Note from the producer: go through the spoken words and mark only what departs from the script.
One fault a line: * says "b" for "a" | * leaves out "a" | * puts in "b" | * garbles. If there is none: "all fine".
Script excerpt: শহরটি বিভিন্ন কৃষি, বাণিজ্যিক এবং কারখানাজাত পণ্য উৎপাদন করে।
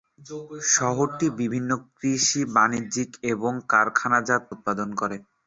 * leaves out "পণ্য"